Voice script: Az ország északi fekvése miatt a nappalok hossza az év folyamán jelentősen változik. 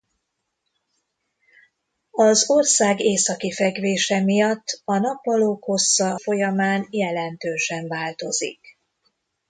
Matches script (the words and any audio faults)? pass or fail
fail